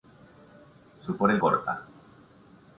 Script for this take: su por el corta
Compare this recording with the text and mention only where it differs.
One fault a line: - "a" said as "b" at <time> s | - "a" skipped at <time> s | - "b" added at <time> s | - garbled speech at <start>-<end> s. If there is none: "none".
none